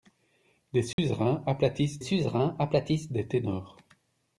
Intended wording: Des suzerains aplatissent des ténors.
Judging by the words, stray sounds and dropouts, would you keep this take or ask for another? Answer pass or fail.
fail